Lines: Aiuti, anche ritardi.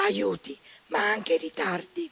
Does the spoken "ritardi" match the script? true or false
true